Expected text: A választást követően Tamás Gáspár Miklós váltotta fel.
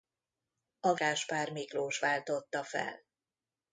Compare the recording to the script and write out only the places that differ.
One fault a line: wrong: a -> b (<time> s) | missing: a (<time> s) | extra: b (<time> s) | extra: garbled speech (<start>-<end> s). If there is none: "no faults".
missing: választást követően Tamás (0.9 s)